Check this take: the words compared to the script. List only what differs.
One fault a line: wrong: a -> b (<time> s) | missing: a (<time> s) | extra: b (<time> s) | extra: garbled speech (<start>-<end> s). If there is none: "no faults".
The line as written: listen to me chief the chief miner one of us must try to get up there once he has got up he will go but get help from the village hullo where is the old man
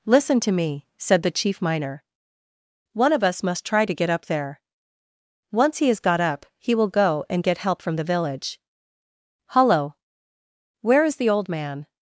wrong: chief -> said (1.0 s)
wrong: but -> and (7.3 s)